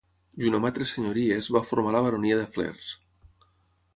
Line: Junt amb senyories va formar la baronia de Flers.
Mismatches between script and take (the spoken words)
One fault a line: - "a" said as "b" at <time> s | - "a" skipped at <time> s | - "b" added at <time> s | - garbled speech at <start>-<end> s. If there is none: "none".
- "altres" added at 0.7 s